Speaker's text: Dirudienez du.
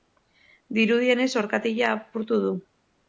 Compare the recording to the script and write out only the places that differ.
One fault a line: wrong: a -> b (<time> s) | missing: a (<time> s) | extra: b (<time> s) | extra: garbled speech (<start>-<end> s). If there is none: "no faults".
extra: orkatila apurtu (1.4 s)